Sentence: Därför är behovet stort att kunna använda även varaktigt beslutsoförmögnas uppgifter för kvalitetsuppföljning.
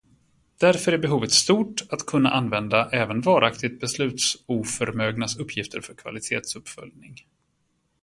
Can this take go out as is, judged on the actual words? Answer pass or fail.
pass